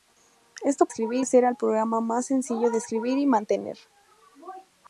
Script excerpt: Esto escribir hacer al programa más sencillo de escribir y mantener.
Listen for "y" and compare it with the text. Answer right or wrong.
right